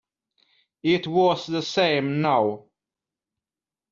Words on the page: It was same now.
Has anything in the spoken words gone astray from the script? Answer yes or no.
yes